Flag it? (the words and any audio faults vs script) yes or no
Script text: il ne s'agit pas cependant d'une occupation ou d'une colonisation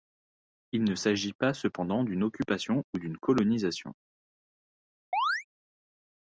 yes